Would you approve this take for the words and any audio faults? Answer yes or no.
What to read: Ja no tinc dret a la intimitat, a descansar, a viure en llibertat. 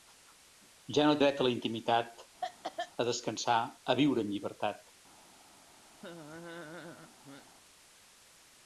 no